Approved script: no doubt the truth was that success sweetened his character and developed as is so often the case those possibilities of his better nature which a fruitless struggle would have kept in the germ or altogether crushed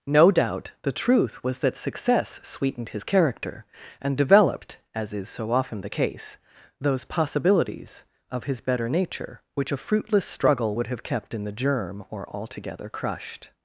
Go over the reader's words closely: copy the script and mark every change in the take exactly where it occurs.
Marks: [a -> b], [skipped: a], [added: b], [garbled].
no doubt the truth was that success sweetened his character and developed as is so often the case those possibilities of his better nature which a fruitless struggle would have kept in the germ or altogether crushed